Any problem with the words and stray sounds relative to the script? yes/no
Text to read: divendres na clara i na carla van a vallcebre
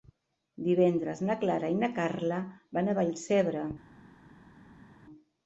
no